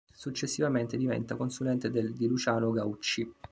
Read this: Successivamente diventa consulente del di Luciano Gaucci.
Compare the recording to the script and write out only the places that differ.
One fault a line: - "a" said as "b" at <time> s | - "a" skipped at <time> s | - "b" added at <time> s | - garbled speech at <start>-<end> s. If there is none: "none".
none